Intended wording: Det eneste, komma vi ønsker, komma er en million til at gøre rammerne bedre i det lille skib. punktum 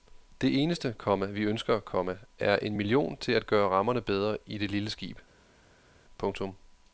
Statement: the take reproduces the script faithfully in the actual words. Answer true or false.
true